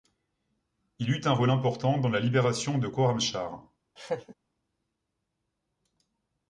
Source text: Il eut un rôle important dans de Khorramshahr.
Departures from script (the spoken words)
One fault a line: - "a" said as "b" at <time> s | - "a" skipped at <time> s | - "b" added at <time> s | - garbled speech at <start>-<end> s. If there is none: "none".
- "la libération" added at 2.1 s